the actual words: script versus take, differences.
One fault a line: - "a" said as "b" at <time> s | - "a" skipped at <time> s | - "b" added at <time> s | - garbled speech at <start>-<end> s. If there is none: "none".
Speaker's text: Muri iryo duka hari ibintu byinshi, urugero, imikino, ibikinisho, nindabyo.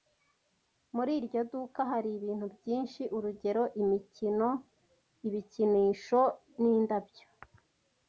none